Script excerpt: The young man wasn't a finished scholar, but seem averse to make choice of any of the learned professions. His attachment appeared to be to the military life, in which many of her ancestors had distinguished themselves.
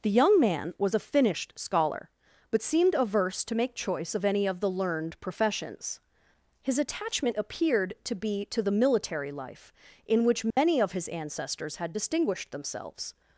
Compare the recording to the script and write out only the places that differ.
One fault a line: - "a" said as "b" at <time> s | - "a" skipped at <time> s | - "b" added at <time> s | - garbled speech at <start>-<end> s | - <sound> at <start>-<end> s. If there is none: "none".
- "wasn't" said as "was" at 0.8 s
- "seem" said as "seemed" at 2.6 s
- dropout at 10.5-10.6 s
- "her" said as "his" at 10.9 s